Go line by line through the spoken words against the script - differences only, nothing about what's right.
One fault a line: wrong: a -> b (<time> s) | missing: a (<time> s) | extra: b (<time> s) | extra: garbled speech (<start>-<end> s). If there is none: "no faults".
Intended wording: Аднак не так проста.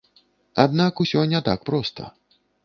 extra: усё (1.0 s)